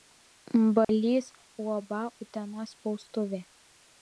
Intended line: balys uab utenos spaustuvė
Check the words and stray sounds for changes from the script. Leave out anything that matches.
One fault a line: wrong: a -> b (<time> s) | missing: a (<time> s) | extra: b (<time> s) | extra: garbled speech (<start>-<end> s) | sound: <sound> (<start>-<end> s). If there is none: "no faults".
sound: dropout (0.8-0.9 s)